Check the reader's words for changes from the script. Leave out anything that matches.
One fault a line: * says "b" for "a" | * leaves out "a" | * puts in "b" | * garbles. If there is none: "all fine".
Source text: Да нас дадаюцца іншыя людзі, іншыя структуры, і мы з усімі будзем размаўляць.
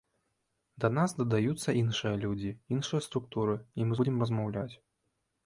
* leaves out "з усімі"